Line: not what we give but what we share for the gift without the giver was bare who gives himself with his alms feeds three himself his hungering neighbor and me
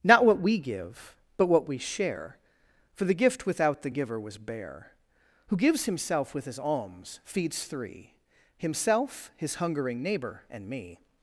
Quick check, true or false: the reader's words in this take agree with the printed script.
true